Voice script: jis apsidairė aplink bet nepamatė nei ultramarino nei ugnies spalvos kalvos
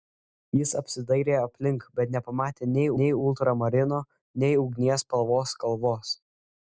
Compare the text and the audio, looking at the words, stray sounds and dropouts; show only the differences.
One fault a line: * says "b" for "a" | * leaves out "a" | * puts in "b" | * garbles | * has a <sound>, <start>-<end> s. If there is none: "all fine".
* puts in "nei"